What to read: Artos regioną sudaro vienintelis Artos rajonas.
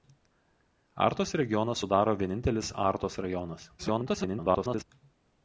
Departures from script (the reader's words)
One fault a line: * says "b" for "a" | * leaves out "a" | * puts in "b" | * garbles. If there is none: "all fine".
* garbles